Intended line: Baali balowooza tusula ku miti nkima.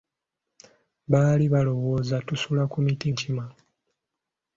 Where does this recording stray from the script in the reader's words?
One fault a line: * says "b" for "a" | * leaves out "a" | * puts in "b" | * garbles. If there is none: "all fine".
all fine